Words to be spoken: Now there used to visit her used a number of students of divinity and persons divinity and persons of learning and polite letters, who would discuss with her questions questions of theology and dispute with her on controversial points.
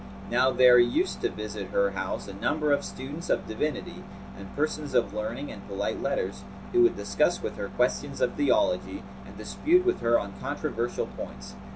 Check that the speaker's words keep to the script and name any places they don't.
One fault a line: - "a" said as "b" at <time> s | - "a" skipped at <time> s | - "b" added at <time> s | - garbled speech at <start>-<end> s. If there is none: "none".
- "used" said as "house" at 1.9 s
- "divinity and persons" skipped at 5.0 s
- "questions" skipped at 8.2 s